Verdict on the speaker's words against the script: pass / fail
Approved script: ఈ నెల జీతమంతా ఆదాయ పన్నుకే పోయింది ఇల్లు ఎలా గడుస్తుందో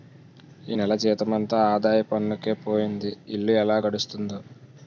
pass